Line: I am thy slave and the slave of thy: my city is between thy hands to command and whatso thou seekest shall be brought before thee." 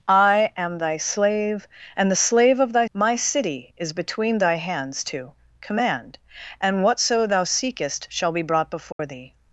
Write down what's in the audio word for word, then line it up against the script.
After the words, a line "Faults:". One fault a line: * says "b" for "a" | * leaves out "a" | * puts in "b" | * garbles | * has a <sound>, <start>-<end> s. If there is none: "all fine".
I am thy slave and the slave of thy: my city is between thy hands to command and whatso thou seekest shall be brought before thee."
Faults:
* has a dropout, 8.9-9.0 s